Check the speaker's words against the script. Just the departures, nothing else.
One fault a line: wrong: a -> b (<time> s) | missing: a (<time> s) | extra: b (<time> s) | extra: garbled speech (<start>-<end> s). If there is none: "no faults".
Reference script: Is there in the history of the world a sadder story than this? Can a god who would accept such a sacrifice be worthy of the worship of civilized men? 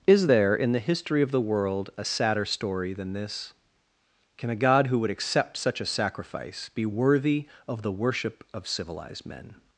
no faults